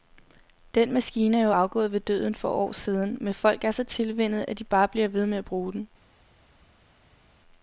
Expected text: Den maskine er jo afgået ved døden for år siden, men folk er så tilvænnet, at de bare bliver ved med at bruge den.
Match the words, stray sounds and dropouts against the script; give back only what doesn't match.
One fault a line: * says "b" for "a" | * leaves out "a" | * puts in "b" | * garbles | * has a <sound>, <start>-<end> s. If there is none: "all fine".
all fine